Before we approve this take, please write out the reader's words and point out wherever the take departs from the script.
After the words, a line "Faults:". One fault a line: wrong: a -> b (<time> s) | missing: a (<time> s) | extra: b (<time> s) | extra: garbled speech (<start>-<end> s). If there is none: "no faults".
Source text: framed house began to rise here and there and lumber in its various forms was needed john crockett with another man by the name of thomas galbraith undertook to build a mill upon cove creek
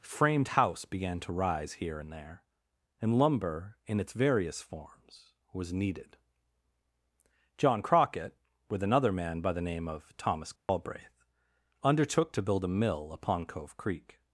framed house began to rise here and there and lumber in its various forms was needed john crockett with another man by the name of thomas galbraith undertook to build a mill upon cove creek
Faults:
no faults